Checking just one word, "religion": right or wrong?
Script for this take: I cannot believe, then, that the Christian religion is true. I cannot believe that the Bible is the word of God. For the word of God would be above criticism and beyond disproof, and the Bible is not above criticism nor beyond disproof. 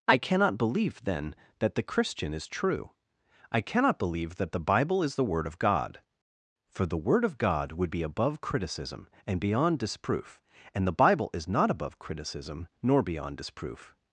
wrong